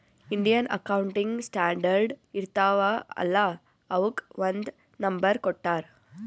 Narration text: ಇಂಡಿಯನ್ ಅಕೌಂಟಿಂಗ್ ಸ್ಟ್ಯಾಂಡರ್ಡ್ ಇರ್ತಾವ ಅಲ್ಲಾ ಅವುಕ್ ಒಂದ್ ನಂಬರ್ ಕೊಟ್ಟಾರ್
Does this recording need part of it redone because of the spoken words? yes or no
no